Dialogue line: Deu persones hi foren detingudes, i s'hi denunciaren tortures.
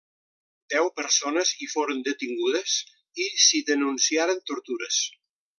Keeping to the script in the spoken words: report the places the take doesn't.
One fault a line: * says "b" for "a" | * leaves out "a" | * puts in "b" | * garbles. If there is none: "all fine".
all fine